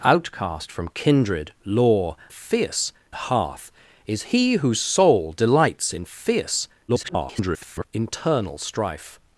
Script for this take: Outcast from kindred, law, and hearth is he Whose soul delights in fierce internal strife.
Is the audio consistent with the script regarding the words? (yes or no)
no